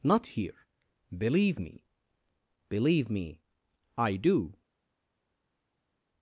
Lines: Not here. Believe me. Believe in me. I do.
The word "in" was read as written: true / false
false